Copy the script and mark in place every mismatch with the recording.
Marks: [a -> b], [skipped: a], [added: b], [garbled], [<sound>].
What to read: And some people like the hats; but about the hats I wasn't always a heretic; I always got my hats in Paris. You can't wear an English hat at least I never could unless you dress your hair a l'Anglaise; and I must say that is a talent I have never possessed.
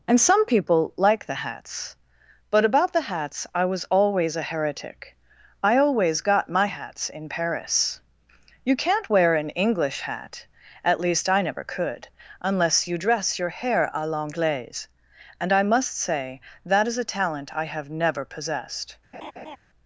And some people like the hats; but about the hats I [wasn't -> was] always a heretic; I always got my hats in Paris. You can't wear an English hat at least I never could unless you dress your hair a l'Anglaise; and I must say that is a talent I have never possessed. [laugh]